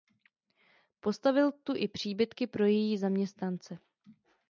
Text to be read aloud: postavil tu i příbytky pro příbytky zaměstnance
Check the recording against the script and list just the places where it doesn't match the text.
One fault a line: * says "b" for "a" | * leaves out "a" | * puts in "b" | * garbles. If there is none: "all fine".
* says "její" for "příbytky"